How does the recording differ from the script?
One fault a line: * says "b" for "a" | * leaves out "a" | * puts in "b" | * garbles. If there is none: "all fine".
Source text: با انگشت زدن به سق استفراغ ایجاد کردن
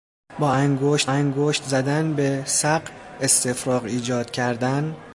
* puts in "انگشت"